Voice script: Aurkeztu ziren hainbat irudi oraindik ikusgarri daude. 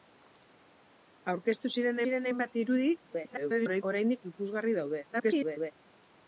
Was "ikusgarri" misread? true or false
false